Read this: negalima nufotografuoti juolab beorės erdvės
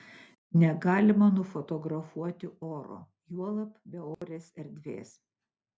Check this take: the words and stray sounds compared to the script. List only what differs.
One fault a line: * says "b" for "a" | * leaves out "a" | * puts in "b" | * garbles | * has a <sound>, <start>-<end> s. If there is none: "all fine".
* puts in "oro"
* has a dropout, 4.1-4.2 s